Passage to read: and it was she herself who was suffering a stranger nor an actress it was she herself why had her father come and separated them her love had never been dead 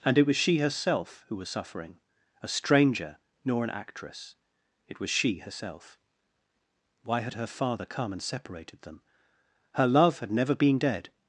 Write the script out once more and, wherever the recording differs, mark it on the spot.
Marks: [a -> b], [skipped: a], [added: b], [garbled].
and it was she herself who was suffering a stranger nor an actress it was she herself why had her father come and separated them her love had never been dead